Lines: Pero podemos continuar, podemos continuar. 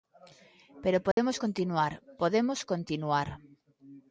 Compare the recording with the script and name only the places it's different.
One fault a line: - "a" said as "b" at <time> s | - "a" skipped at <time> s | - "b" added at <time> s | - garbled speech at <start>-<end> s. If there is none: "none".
none